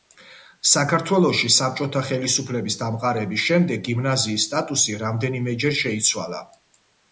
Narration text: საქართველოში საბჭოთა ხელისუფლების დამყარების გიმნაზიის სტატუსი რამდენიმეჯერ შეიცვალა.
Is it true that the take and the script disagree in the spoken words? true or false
true